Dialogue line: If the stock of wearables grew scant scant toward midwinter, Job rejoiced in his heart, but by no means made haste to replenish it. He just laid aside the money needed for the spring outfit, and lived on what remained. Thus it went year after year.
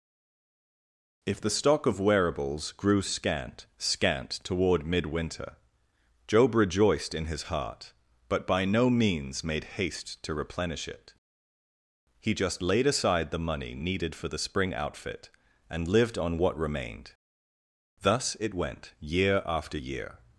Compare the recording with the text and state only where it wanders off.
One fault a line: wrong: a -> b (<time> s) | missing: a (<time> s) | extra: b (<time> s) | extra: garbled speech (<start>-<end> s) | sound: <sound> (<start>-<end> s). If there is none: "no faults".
no faults